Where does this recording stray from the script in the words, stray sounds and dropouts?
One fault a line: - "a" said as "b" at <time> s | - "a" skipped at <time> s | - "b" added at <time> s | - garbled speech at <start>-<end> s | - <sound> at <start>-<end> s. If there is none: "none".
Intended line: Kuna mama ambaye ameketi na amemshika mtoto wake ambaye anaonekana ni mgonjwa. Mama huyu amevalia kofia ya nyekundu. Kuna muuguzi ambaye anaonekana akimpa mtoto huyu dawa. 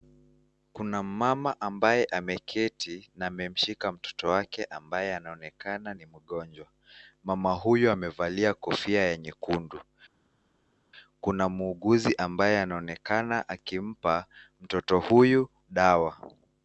none